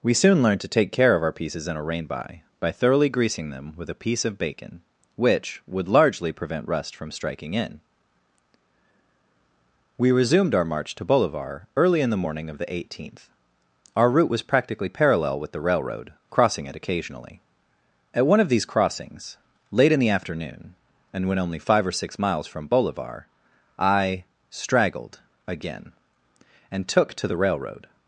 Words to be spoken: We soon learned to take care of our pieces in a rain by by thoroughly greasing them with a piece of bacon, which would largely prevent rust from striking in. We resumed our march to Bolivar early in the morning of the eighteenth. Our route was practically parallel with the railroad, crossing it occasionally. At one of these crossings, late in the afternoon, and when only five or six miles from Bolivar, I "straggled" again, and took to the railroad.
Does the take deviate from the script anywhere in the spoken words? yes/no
no